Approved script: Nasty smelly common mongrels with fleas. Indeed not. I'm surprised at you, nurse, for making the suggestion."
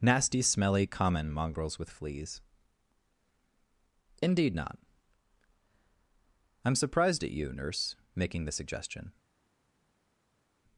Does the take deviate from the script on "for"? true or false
true